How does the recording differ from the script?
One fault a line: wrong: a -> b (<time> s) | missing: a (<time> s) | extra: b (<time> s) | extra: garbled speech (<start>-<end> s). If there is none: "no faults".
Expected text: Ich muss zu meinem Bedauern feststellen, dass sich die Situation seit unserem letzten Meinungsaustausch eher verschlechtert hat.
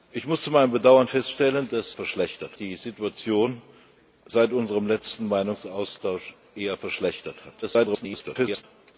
wrong: sich -> verschlechtert (1.9 s)
extra: garbled speech (7.6-8.6 s)